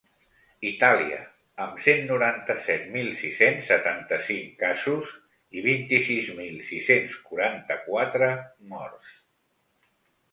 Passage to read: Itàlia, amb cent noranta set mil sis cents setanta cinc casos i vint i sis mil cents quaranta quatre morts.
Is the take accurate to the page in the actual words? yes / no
no